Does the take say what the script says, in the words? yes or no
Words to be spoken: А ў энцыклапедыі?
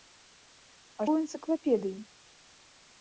yes